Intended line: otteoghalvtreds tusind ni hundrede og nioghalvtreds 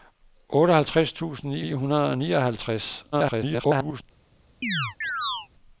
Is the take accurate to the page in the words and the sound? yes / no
no